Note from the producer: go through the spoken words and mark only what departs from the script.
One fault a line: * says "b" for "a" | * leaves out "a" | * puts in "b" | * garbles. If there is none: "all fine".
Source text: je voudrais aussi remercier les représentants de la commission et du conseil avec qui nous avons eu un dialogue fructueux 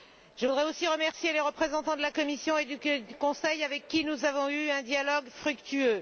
all fine